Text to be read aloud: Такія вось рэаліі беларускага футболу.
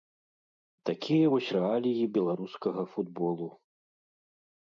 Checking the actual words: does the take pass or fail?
pass